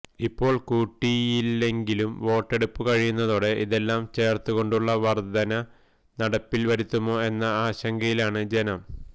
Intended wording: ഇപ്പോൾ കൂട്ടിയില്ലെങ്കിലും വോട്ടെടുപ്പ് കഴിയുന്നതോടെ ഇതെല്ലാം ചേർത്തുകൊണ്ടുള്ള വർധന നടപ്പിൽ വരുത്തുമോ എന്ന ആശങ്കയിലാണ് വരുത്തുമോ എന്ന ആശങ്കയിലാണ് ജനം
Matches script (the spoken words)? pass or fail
fail